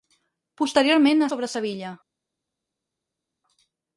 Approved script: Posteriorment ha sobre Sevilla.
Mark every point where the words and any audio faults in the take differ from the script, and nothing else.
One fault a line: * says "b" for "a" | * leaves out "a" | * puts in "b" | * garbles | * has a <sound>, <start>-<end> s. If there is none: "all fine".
all fine